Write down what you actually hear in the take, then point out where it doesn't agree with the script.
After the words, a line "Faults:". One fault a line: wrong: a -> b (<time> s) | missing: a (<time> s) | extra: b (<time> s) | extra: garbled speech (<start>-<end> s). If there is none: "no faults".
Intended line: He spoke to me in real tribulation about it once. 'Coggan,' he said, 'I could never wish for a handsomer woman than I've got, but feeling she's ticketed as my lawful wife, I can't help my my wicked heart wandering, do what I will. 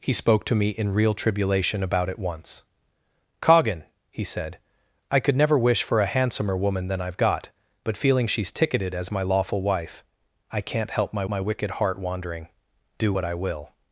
He spoke to me in real tribulation about it once. 'Coggan,' he said, 'I could never wish for a handsomer woman than I've got, but feeling she's ticketed as my lawful wife, I can't help my my wicked heart wandering, do what I will.
Faults:
no faults